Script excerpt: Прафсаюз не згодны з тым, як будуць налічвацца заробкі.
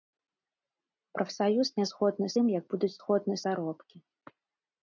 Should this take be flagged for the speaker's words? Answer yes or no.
yes